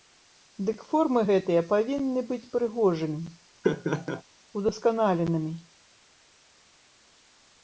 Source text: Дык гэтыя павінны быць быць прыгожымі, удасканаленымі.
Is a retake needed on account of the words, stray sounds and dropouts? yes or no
yes